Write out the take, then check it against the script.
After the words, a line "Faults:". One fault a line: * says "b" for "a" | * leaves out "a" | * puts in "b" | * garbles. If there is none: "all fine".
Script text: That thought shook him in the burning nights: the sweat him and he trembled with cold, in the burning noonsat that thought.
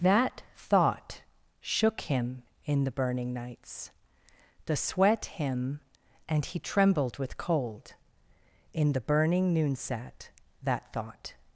That thought shook him in the burning nights: the sweat him and he trembled with cold, in the burning noonsat that thought.
Faults:
all fine